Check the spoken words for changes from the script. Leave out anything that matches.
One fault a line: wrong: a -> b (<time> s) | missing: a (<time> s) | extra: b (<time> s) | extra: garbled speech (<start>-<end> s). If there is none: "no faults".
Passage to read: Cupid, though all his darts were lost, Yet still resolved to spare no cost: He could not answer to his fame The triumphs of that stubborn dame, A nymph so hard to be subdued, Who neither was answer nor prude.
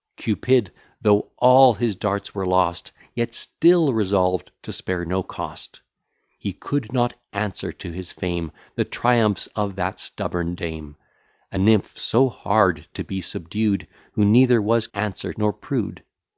no faults